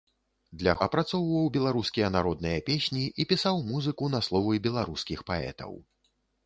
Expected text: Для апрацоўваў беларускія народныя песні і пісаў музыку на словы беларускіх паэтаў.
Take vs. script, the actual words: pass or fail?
pass